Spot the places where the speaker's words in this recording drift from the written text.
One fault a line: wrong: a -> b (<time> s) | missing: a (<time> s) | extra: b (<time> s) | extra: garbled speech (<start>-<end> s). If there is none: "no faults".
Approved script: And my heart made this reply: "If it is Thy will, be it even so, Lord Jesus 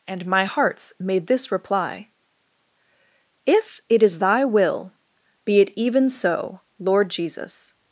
wrong: heart -> hearts (0.4 s)